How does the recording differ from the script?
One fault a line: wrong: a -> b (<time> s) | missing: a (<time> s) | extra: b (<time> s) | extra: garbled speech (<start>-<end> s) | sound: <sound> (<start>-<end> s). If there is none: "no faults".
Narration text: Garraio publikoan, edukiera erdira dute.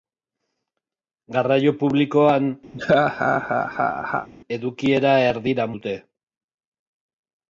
sound: laugh (2.7-4.3 s)